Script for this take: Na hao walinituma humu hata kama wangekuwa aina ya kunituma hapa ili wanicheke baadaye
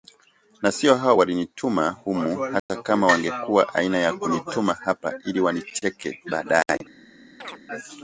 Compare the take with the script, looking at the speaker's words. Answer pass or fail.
fail